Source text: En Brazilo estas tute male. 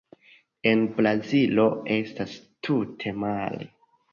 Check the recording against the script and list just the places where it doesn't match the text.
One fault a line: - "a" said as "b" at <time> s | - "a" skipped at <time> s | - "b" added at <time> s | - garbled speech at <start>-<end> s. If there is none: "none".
none